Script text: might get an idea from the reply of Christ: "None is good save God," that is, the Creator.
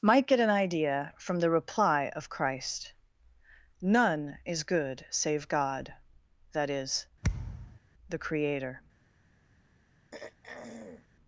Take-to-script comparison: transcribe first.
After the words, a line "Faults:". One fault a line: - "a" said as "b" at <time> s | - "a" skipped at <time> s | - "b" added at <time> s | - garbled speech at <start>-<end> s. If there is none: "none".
might get an idea from the reply of Christ: "None is good save God," that is, the Creator.
Faults:
none